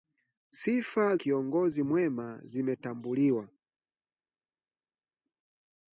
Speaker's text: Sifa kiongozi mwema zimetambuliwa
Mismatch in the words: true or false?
false